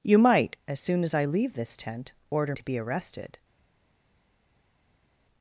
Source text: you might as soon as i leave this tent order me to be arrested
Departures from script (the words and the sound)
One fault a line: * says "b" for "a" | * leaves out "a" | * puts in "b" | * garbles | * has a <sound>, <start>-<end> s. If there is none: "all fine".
* leaves out "me"